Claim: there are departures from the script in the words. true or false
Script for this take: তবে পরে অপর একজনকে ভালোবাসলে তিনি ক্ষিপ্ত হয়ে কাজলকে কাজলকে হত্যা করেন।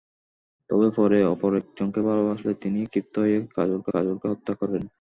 false